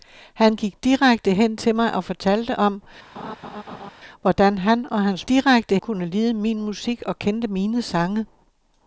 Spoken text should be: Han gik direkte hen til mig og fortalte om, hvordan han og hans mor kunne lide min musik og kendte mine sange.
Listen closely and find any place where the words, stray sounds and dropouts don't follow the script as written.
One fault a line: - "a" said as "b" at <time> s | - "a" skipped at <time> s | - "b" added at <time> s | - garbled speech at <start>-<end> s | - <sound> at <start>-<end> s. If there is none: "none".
- laugh at 3.1-3.9 s
- "mor" said as "direkte" at 5.3 s